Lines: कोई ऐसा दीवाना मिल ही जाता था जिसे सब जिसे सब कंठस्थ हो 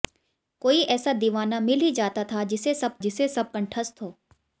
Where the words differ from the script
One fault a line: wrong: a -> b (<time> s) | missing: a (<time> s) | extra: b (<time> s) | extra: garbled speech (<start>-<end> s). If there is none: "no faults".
no faults